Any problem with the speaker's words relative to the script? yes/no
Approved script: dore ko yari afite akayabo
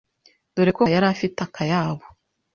no